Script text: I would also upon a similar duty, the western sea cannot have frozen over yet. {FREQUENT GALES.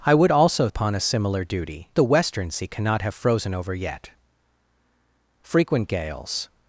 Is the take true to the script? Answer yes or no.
yes